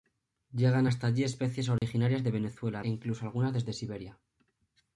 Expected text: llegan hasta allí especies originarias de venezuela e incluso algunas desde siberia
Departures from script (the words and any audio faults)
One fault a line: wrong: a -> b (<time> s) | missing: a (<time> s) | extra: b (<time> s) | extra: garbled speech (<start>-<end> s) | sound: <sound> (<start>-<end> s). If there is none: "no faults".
sound: dropout (1.8-1.8 s)